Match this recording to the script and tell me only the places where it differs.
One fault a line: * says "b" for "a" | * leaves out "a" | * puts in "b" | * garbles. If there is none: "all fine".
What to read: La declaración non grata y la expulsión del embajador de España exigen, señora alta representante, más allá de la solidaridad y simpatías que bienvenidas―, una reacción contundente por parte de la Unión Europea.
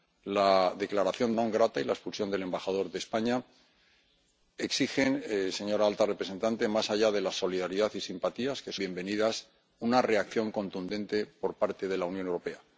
all fine